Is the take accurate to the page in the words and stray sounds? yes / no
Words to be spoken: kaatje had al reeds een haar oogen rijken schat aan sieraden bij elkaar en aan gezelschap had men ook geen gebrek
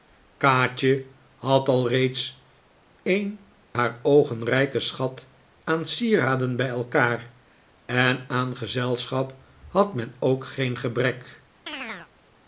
no